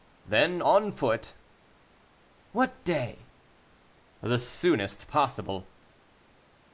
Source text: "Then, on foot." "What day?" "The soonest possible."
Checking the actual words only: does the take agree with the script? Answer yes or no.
yes